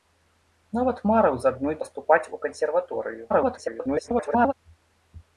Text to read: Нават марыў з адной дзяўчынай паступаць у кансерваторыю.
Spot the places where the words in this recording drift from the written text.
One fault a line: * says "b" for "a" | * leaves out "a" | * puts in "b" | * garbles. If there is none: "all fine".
* leaves out "дзяўчынай"
* garbles